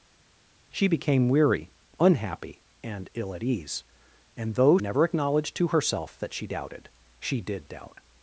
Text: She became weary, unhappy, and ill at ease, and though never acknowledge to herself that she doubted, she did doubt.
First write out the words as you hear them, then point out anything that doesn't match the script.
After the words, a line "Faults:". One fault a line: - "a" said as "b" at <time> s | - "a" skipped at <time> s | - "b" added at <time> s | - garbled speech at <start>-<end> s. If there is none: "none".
She became weary, unhappy, and ill at ease, and though never acknowledge to herself that she doubted, she did doubt.
Faults:
none